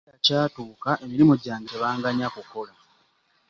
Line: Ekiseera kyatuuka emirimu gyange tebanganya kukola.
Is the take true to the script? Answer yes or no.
yes